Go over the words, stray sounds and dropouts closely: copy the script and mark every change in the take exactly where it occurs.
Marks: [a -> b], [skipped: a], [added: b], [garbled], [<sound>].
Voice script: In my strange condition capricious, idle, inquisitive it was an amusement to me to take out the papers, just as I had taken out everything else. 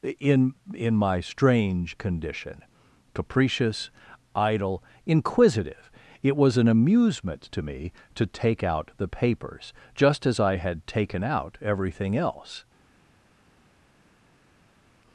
In [added: in] my strange condition capricious, idle, inquisitive it was an amusement to me to take out the papers, just as I had taken out everything else.